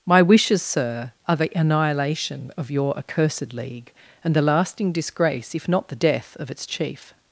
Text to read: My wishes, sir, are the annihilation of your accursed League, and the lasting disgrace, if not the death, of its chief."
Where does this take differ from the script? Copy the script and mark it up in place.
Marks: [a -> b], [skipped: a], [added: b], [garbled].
My wishes, sir, are the annihilation of your accursed League, and the lasting disgrace, if not the death, of its chief."